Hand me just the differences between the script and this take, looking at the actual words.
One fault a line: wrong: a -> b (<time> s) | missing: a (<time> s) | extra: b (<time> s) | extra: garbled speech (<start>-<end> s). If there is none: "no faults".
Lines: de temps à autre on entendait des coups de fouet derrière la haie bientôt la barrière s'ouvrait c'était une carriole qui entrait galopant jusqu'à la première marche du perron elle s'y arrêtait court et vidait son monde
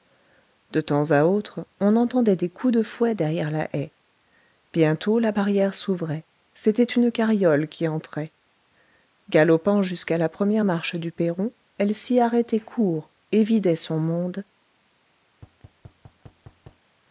no faults